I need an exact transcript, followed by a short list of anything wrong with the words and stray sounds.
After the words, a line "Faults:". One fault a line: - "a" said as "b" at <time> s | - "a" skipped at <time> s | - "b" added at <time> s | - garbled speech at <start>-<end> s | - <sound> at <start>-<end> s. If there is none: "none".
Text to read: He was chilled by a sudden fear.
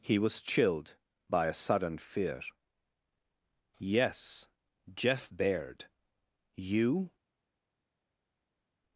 He was chilled by a sudden fear. "Yes, Jeff Baird. You
Faults:
- "Yes Jeff Baird You" added at 3.8 s